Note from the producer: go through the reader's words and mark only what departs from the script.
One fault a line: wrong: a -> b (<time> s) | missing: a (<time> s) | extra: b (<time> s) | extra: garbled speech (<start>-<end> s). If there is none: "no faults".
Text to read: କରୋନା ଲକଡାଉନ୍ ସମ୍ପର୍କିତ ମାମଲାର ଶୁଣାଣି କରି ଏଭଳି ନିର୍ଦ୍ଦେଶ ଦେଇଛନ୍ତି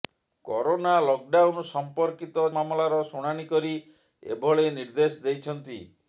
no faults